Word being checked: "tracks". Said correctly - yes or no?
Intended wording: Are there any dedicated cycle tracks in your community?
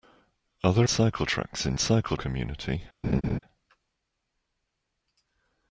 yes